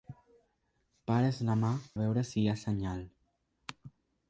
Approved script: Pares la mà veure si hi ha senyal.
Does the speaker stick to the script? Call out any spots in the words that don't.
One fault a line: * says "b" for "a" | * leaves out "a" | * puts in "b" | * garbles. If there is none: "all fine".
all fine